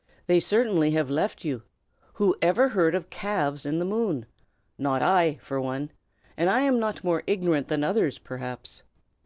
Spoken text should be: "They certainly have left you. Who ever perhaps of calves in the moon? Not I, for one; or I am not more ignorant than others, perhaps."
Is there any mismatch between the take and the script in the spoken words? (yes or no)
yes